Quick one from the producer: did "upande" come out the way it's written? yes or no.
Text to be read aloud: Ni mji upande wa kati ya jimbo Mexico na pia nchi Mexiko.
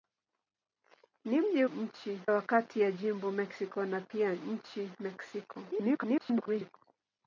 no